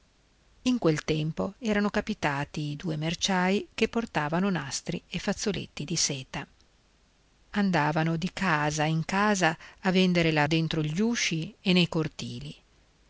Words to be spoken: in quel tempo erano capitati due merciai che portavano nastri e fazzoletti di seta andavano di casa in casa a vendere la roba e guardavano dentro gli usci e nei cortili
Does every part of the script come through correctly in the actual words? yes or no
no